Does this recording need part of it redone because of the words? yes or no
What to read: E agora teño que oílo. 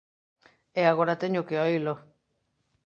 no